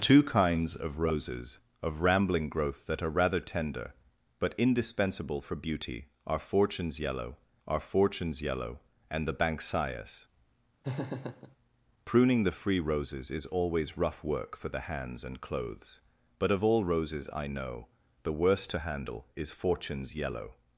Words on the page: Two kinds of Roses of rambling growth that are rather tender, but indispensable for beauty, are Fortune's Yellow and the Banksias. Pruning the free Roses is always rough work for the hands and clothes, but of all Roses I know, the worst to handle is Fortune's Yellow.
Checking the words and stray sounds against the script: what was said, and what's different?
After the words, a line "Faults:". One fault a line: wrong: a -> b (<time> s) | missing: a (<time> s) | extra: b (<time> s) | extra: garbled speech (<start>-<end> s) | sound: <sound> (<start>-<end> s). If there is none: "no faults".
Two kinds of Roses of rambling growth that are rather tender, but indispensable for beauty, are Fortune's Yellow are Fortune's Yellow and the Banksias. Pruning the free Roses is always rough work for the hands and clothes, but of all Roses I know, the worst to handle is Fortune's Yellow.
Faults:
extra: are Fortune's Yellow (7.7 s)
sound: laugh (10.8-11.6 s)